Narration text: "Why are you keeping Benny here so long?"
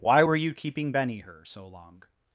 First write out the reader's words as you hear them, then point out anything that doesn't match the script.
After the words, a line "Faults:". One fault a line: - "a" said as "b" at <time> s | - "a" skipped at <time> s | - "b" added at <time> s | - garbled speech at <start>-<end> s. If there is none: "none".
"Why were you keeping Benny her so long?"
Faults:
- "are" said as "were" at 0.2 s
- "here" said as "her" at 1.2 s